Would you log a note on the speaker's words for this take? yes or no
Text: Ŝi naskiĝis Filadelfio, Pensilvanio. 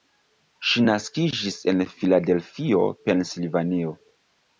yes